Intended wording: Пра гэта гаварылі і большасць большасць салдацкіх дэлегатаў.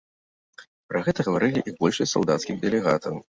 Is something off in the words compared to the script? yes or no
yes